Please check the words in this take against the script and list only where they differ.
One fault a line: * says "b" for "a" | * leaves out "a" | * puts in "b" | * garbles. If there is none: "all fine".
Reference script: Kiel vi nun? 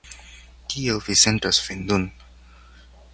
* puts in "sentas vin"